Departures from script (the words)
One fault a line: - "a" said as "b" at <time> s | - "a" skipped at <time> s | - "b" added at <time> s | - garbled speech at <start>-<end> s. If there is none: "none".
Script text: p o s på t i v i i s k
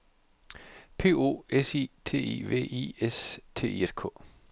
- "på" said as "i" at 1.8 s
- "s t" added at 3.0 s